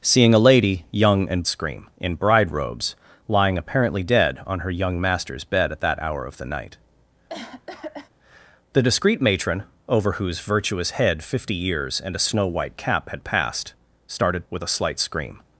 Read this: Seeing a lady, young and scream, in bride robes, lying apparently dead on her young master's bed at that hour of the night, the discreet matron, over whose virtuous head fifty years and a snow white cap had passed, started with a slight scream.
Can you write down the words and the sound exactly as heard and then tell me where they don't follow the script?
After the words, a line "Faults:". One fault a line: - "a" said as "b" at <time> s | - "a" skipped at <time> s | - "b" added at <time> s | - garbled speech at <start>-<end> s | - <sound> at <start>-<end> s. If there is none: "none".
Seeing a lady, young and scream, in bride robes, lying apparently dead on her young master's bed at that hour of the night, the discreet matron, over whose virtuous head fifty years and a snow white cap had passed, started with a slight scream.
Faults:
- cough at 7.3-8.1 s